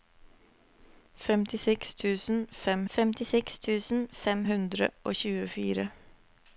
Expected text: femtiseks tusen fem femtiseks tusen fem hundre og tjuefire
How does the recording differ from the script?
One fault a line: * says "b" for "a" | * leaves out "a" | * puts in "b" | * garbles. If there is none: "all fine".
all fine